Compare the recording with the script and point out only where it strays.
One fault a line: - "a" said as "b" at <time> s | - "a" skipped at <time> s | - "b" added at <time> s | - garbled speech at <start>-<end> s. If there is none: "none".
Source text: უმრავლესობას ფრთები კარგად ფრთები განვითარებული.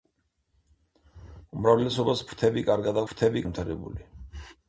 none